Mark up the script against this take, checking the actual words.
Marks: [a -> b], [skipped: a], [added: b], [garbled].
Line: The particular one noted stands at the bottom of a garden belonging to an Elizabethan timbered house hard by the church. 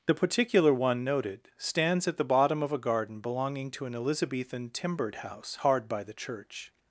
The particular one noted stands at the bottom of a garden belonging to an Elizabethan timbered house hard by the church.